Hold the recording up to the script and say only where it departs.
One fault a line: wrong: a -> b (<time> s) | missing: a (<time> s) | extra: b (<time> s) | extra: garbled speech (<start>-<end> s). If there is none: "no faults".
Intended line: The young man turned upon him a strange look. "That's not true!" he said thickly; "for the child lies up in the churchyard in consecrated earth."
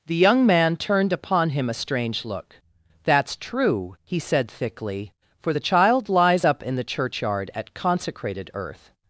missing: not (3.4 s)
wrong: in -> at (7.5 s)